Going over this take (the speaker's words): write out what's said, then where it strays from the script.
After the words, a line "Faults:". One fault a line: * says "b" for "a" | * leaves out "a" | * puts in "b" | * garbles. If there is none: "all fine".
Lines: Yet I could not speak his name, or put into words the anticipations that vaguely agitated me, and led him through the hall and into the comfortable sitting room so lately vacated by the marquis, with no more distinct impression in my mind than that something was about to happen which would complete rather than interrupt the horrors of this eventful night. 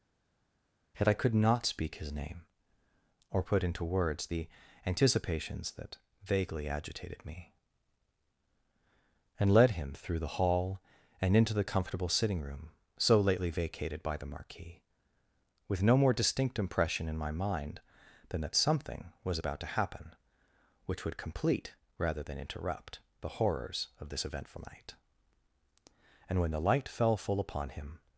Yet I could not speak his name, or put into words the anticipations that vaguely agitated me, and led him through the hall and into the comfortable sitting room so lately vacated by the marquis, with no more distinct impression in my mind than that something was about to happen which would complete rather than interrupt the horrors of this eventful night. And when the light fell full upon him
Faults:
* puts in "And when the light fell full upon him"